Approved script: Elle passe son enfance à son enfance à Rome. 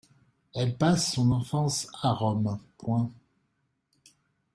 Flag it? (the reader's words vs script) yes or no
yes